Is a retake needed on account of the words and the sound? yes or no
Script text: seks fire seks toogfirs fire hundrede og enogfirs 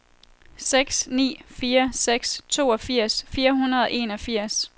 yes